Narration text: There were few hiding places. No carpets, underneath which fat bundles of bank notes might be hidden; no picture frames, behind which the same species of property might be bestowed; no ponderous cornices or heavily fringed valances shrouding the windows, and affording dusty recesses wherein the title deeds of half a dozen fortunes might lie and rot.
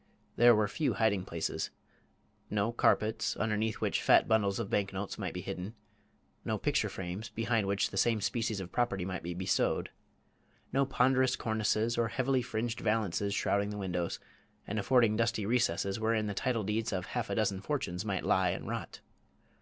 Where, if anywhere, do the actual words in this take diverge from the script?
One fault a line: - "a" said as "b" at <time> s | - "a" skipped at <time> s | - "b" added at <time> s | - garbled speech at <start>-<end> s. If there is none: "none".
none